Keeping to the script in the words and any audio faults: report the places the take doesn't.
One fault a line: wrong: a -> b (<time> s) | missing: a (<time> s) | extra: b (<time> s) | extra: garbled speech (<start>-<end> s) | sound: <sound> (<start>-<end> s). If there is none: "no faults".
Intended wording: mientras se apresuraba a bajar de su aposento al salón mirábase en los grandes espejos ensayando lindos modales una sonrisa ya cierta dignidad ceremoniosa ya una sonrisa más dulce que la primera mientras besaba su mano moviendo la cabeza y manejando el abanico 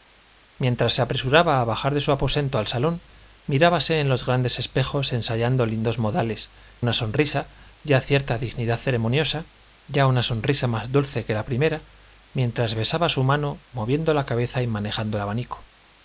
no faults